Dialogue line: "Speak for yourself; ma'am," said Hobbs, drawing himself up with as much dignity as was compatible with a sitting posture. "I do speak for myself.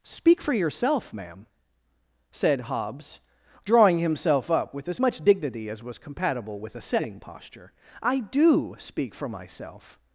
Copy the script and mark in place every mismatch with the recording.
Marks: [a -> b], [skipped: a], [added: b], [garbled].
"Speak for yourself; ma'am," said Hobbs, drawing himself up with as much dignity as was compatible with a sitting posture. "I do speak for myself.